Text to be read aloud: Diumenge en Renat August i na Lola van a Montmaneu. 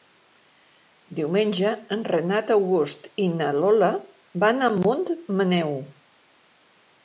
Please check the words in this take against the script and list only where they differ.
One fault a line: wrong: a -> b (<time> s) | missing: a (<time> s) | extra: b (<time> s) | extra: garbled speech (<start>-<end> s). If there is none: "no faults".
no faults